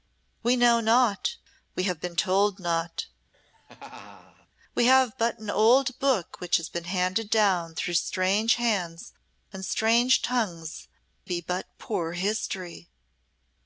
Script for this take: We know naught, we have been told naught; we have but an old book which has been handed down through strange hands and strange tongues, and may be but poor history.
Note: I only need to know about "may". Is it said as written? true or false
false